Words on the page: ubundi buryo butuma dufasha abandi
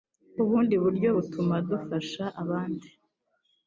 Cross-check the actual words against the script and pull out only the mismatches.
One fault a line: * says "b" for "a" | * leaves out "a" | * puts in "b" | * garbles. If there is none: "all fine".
all fine